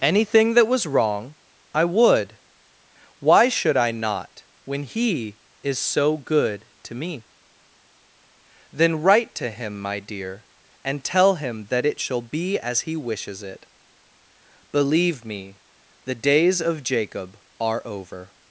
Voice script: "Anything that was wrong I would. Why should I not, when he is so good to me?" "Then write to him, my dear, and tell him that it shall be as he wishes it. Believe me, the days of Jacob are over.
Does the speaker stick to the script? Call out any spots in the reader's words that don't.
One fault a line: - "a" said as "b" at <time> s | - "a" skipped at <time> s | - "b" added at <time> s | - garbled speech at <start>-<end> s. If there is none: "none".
none